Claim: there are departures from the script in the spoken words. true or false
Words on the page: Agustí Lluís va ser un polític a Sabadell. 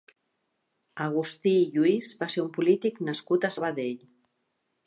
true